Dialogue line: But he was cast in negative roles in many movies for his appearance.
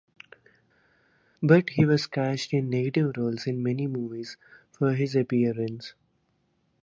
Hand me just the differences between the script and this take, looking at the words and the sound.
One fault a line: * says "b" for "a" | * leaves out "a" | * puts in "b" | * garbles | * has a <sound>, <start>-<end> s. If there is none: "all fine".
all fine